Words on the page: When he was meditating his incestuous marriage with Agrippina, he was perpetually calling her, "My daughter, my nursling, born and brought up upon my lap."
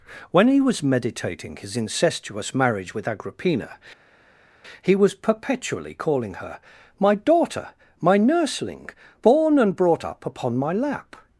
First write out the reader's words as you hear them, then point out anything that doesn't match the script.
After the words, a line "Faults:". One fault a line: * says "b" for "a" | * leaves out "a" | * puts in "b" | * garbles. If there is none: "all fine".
When he was meditating his incestuous marriage with Agrippina, he was perpetually calling her, "My daughter, my nursling, born and brought up upon my lap."
Faults:
all fine